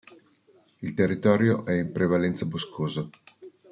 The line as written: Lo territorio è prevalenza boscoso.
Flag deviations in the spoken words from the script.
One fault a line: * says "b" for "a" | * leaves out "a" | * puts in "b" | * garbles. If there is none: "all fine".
* says "Il" for "Lo"
* puts in "in"